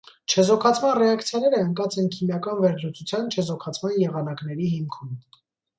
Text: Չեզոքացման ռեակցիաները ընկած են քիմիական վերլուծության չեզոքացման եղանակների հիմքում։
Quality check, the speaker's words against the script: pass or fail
pass